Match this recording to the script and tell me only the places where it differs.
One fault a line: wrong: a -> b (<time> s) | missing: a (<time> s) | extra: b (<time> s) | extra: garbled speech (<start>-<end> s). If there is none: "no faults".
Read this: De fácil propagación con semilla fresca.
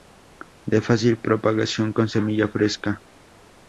no faults